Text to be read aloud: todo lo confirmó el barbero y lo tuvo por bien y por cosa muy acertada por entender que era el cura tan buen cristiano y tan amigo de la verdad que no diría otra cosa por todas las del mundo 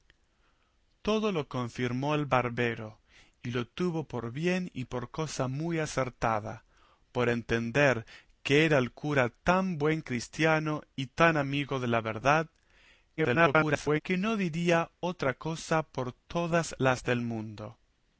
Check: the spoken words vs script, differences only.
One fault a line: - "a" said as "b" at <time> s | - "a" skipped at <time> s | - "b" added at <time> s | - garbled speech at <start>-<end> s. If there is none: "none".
- garbled speech at 13.2-14.0 s